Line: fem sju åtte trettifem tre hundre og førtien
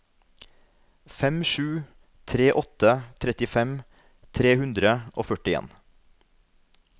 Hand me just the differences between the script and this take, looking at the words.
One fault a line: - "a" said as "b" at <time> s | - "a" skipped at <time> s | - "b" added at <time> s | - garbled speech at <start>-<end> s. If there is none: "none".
- "tre" added at 2.3 s